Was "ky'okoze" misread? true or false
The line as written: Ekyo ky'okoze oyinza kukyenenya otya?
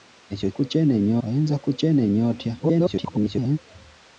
true